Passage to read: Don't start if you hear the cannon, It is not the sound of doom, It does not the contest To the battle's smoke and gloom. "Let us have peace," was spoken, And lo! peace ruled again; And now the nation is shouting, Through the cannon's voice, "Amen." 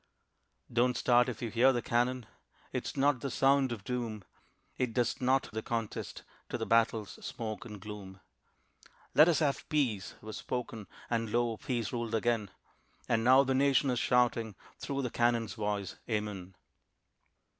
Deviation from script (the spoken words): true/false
false